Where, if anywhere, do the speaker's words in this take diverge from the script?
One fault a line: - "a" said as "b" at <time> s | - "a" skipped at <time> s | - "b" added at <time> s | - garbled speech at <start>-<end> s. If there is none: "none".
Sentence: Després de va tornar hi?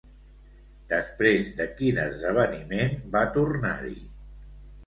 - "quin esdeveniment" added at 1.8 s